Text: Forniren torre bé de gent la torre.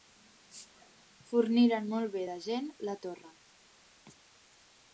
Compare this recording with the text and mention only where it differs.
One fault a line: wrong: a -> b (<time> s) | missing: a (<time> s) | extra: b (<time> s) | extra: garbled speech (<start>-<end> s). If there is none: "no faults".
wrong: torre -> molt (1.9 s)